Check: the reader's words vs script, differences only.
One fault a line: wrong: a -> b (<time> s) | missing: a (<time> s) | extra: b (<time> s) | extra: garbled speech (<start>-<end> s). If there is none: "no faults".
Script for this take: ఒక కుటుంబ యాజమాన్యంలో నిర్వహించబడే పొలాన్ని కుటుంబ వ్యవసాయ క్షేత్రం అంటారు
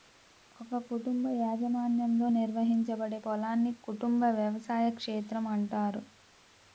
no faults